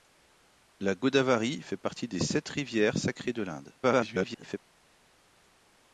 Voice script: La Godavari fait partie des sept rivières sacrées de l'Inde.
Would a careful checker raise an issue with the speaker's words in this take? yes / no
yes